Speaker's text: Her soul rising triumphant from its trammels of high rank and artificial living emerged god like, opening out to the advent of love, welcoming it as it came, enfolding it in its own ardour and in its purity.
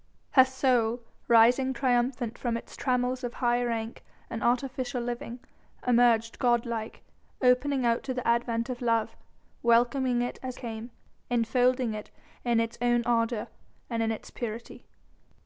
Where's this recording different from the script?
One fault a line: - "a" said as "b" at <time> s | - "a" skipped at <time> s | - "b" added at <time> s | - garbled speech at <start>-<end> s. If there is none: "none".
- "it" skipped at 10.6 s